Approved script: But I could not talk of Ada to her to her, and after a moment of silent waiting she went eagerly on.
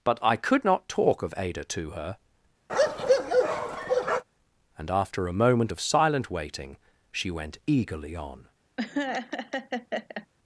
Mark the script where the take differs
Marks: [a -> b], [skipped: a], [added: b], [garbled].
But I could not talk of Ada to her [skipped: to her,] and after a moment of silent waiting she went eagerly on.